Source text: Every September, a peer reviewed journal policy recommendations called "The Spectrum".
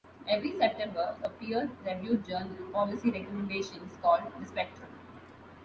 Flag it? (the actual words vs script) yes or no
no